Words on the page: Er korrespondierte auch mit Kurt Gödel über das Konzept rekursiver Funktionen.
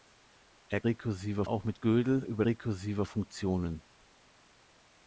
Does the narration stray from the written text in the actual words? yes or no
yes